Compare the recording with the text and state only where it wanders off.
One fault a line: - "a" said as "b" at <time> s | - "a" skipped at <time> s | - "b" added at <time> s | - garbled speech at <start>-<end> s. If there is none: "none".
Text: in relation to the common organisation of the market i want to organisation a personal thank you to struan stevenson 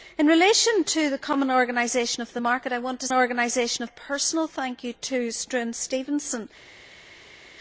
none